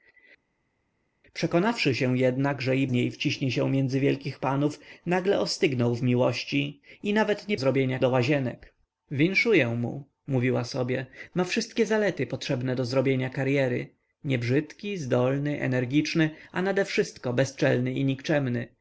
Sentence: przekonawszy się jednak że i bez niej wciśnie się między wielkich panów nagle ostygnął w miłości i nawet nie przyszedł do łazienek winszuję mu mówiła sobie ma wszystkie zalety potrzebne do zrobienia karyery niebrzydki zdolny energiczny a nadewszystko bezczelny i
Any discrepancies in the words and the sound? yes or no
yes